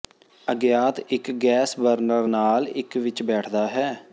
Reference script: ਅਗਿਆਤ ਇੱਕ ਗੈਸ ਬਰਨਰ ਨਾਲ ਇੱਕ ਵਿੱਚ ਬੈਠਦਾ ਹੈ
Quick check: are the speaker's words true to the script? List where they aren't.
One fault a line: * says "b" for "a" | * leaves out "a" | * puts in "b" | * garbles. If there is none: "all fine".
all fine